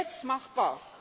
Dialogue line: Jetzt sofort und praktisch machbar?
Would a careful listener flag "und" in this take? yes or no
yes